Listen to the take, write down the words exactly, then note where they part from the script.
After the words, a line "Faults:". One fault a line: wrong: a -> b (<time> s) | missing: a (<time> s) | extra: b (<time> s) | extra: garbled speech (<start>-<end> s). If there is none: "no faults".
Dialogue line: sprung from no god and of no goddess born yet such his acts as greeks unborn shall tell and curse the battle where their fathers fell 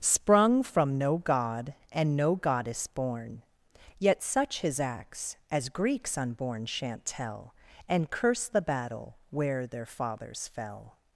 sprung from no god and no goddess born yet such his acts as greeks unborn shan't tell and curse the battle where their fathers fell
Faults:
missing: of (2.2 s)
wrong: shall -> shan't (6.7 s)